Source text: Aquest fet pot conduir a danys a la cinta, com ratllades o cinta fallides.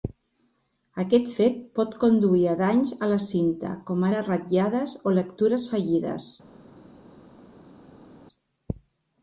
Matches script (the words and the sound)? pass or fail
fail